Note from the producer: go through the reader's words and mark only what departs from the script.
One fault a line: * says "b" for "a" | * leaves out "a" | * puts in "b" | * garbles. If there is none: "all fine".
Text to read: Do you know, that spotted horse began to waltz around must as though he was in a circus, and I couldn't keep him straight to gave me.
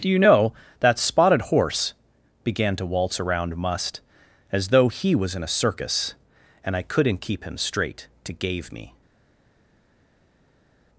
all fine